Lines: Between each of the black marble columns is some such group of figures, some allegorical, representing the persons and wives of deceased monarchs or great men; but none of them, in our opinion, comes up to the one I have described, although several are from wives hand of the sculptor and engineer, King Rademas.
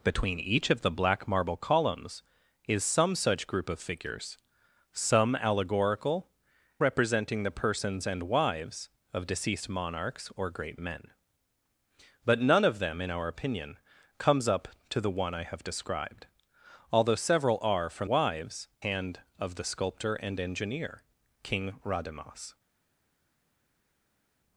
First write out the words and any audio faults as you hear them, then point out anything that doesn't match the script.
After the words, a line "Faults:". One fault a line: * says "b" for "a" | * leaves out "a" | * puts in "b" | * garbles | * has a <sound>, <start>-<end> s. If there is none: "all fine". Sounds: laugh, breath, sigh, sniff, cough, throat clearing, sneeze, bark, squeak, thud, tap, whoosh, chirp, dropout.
Between each of the black marble columns is some such group of figures, some allegorical, representing the persons and wives of deceased monarchs or great men; but none of them, in our opinion, comes up to the one I have described, although several are from wives hand of the sculptor and engineer, King Rademas.
Faults:
all fine